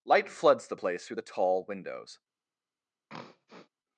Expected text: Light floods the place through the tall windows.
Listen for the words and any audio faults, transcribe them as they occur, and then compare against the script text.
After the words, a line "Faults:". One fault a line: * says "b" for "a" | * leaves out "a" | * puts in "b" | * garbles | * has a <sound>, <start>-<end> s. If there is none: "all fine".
Light floods the place through the tall windows.
Faults:
* has a throat clearing, 3.1-3.7 s